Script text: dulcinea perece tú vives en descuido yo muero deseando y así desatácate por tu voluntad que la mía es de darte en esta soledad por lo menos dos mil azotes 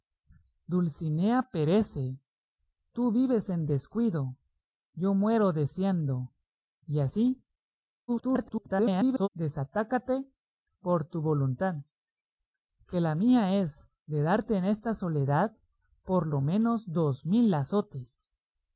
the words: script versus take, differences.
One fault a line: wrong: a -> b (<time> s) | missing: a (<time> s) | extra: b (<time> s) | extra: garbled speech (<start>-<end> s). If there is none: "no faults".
extra: garbled speech (8.1-9.3 s)